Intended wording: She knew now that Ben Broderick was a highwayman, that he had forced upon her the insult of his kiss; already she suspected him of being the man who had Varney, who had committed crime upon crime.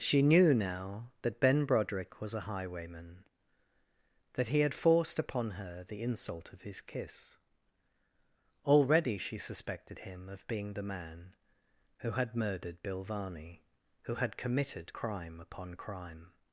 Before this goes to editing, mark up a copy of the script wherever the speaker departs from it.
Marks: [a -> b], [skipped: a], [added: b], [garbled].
She knew now that Ben Broderick was a highwayman, that he had forced upon her the insult of his kiss; already she suspected him of being the man who had [added: murdered Bill] Varney, who had committed crime upon crime.